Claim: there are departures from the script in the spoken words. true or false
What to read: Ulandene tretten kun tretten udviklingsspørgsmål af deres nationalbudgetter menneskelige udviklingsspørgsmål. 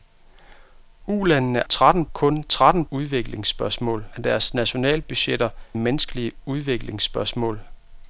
false